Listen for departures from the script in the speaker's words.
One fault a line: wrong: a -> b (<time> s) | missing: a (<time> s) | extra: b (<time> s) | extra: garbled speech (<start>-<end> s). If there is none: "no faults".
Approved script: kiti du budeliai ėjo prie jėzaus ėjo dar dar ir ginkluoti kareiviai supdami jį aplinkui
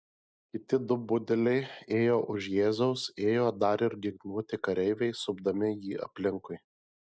wrong: prie -> už (2.4 s)
missing: dar (3.9 s)